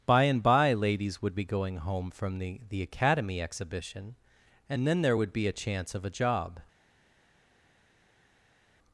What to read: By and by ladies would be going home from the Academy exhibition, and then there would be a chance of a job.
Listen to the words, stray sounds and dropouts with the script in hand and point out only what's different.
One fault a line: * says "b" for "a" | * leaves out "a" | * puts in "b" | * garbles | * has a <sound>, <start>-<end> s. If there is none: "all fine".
* puts in "the"